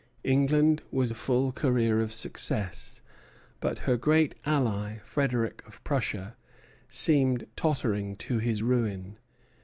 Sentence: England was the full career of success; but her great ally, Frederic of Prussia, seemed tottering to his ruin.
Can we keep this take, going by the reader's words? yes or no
yes